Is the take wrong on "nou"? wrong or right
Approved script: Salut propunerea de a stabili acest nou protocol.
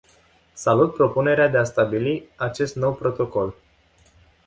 right